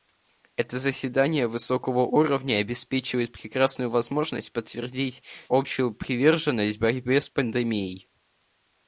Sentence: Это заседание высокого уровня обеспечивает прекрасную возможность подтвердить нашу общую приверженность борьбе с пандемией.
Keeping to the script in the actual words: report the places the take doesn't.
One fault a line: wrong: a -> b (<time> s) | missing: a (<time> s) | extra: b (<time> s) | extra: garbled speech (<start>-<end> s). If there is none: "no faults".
missing: нашу (5.2 s)